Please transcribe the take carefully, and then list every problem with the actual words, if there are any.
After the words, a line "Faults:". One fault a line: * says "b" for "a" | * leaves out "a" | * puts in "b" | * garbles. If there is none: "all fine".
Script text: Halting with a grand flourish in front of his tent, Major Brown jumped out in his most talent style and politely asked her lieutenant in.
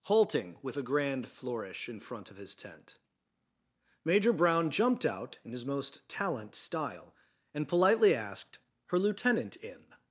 Halting with a grand flourish in front of his tent, Major Brown jumped out in his most talent style and politely asked her lieutenant in.
Faults:
all fine